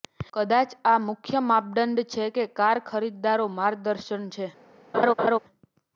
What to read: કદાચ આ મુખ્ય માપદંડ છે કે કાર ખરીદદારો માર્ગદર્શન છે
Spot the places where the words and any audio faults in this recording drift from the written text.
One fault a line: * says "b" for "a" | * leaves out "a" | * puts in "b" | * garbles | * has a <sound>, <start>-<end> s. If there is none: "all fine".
* has a laugh, 4.9-5.4 s